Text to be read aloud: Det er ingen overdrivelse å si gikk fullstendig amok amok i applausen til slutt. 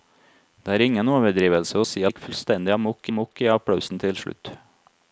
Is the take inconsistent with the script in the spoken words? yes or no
no